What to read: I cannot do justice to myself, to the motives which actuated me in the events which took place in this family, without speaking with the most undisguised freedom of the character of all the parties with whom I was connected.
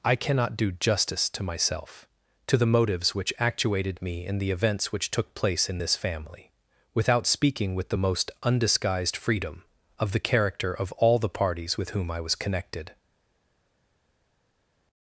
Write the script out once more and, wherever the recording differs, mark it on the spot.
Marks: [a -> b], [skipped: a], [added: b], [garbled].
I cannot do justice to myself, to the motives which actuated me in the events which took place in this family, without speaking with the most undisguised freedom of the character of all the parties with whom I was connected.